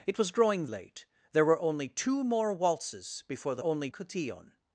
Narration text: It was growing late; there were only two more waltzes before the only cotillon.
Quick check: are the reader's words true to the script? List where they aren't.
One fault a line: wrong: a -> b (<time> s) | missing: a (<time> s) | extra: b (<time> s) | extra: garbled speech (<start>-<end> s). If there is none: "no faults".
no faults